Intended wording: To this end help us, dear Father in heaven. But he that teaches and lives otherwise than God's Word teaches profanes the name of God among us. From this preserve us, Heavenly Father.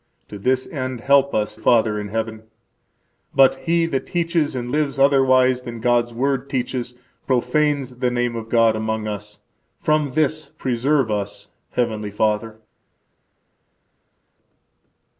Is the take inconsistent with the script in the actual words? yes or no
yes